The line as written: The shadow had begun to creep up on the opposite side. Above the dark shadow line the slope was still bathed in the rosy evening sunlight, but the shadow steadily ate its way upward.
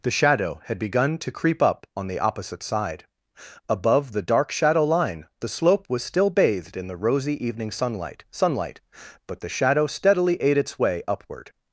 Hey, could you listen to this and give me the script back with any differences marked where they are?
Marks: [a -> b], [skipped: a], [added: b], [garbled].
The shadow had begun to creep up on the opposite side. Above the dark shadow line the slope was still bathed in the rosy evening sunlight, [added: sunlight] but the shadow steadily ate its way upward.